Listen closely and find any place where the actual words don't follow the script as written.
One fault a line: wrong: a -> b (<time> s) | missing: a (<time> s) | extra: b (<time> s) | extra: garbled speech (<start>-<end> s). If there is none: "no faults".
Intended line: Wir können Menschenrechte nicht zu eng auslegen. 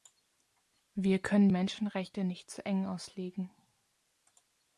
no faults